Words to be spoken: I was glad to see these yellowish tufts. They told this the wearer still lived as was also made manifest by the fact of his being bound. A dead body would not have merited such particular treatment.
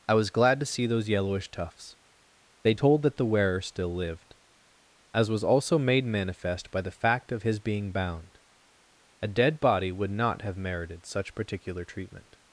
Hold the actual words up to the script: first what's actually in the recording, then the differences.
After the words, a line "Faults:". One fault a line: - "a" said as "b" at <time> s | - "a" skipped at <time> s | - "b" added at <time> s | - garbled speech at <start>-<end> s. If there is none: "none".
I was glad to see those yellowish tufts. They told that the wearer still lived as was also made manifest by the fact of his being bound. A dead body would not have merited such particular treatment.
Faults:
- "these" said as "those" at 0.9 s
- "this" said as "that" at 3.0 s